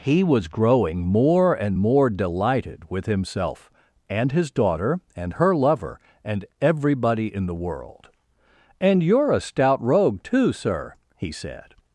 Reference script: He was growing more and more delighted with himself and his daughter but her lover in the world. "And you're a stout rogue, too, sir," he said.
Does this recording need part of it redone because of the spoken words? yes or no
yes